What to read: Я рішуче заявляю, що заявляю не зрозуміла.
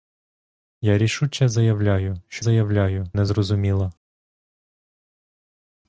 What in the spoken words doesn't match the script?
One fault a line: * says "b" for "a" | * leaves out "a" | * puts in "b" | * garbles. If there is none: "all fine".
all fine